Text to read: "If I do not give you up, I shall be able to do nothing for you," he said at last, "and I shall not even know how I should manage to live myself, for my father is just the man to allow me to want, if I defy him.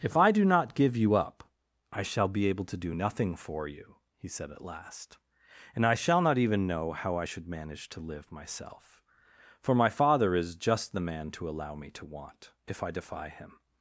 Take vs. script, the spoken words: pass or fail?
pass